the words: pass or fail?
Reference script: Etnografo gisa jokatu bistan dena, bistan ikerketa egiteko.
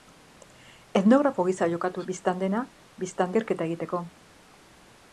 pass